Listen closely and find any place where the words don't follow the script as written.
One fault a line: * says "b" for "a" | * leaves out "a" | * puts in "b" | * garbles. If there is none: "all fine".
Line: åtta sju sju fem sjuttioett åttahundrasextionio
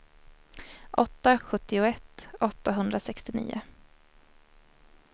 * leaves out "sju sju fem"